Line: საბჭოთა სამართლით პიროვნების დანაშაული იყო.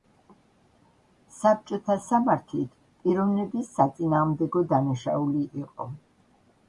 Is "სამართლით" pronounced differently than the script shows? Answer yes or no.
no